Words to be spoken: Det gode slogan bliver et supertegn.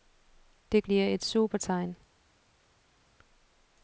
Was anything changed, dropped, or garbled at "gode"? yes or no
yes